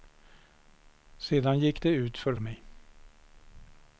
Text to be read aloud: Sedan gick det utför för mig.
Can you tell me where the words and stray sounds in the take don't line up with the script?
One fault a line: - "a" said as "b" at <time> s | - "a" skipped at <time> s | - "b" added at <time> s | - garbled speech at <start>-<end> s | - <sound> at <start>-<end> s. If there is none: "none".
- "för" skipped at 2.3 s